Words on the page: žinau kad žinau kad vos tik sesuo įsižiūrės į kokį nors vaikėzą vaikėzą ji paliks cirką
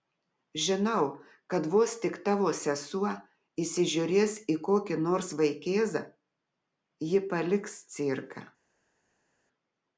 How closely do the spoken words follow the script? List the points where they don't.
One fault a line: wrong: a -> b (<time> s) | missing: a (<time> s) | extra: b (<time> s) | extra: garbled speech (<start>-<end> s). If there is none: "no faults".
missing: žinau kad (1.7 s)
extra: tavo (2.3 s)
missing: vaikėzą (6.1 s)